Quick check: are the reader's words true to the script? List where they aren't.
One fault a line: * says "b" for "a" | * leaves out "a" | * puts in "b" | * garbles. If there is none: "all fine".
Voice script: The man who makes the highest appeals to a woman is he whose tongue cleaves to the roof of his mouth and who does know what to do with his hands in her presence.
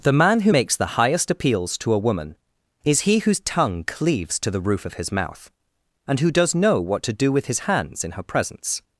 all fine